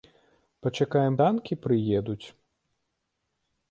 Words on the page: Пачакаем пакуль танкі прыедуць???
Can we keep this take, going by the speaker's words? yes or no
no